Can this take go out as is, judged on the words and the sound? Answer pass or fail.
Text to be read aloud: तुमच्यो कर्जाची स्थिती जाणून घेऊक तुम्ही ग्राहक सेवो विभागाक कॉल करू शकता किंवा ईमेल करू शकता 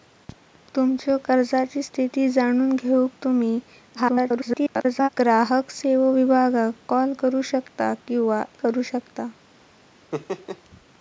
fail